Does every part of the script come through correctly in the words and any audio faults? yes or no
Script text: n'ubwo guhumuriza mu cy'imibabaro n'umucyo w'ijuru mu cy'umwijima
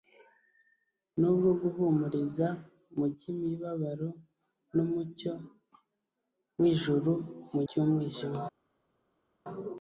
yes